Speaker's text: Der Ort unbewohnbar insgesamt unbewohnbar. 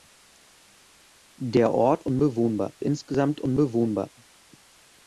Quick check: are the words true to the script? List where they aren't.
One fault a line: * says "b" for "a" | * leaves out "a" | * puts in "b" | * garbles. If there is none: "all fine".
all fine